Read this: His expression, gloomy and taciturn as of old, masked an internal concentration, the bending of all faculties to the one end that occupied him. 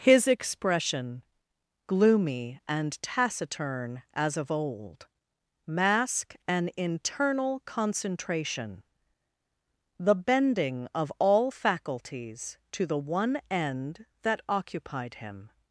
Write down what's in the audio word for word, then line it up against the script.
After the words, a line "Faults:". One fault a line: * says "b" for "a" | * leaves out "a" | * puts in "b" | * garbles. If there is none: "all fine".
His expression, gloomy and taciturn as of old, mask an internal concentration, the bending of all faculties to the one end that occupied him.
Faults:
* says "mask" for "masked"